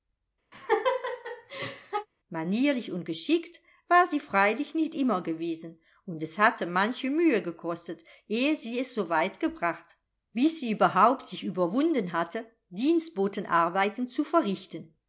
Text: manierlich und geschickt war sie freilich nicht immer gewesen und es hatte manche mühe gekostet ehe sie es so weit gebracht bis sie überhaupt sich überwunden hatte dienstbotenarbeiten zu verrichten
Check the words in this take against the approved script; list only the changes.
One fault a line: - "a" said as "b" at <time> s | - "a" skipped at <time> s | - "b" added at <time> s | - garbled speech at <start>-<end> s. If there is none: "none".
none